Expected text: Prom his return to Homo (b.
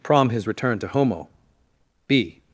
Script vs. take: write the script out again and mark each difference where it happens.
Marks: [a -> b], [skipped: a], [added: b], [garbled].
Prom his return to Homo (b.